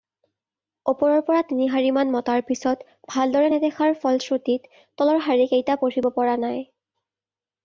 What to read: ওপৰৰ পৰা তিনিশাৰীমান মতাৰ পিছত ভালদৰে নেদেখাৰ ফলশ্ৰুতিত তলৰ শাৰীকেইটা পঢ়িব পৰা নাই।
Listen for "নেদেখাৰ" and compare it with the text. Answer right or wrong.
right